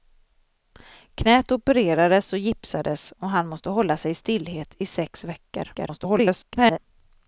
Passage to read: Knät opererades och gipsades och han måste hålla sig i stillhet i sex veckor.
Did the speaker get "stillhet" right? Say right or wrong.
right